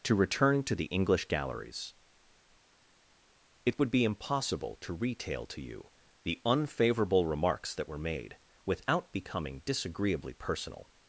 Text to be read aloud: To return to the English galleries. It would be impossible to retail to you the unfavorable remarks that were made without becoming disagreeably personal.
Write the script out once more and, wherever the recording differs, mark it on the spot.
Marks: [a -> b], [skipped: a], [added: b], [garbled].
To return to the English galleries. It would be impossible to retail to you the unfavorable remarks that were made without becoming disagreeably personal.